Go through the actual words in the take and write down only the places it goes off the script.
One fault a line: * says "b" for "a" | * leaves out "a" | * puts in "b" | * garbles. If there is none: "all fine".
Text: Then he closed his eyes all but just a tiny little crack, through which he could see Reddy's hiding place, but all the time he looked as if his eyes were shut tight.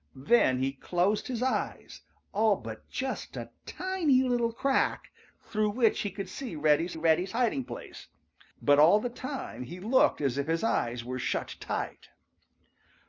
* puts in "Reddy's"